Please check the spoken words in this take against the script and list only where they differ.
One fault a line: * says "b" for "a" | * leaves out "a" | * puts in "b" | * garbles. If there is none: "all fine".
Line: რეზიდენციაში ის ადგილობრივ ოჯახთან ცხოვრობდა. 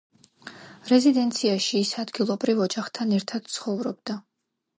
* puts in "ერთად"